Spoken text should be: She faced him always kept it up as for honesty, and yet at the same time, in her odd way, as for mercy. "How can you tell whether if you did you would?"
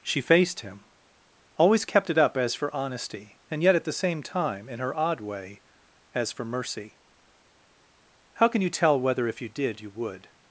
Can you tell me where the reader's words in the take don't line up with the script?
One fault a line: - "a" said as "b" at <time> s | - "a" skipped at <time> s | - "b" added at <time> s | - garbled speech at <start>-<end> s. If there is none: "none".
none